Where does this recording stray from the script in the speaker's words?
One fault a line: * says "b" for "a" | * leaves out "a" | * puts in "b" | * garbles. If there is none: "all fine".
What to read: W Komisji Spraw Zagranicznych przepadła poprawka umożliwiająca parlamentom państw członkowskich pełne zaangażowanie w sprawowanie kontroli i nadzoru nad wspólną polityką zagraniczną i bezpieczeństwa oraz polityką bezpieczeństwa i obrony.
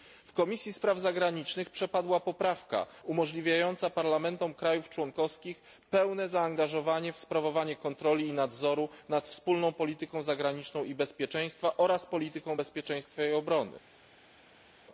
all fine